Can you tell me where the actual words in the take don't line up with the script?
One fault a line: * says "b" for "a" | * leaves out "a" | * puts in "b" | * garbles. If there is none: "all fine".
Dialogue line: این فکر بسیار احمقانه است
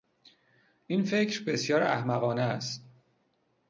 all fine